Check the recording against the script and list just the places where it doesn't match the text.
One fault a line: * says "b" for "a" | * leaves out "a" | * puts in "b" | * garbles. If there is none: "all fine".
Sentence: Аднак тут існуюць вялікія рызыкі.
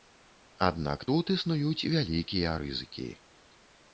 all fine